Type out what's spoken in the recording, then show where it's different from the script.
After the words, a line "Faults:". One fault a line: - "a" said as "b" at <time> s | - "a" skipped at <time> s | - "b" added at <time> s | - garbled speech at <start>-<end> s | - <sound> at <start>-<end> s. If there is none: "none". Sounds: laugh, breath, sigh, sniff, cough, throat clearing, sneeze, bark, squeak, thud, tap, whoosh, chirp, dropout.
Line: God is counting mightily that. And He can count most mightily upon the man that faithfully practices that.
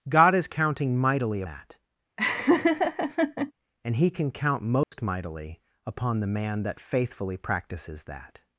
God is counting mightily that. And He can count most mightily upon the man that faithfully practices that.
Faults:
- laugh at 2.2-3.5 s
- dropout at 4.8-4.9 s